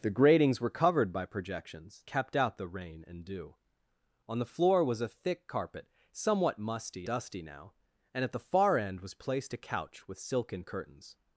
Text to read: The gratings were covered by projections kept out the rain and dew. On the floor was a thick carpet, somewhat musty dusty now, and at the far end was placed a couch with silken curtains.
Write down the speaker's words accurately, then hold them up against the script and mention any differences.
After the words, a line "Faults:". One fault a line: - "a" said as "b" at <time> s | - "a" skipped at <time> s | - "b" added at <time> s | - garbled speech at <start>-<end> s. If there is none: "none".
The gratings were covered by projections kept out the rain and dew. On the floor was a thick carpet, somewhat musty dusty now, and at the far end was placed a couch with silken curtains.
Faults:
none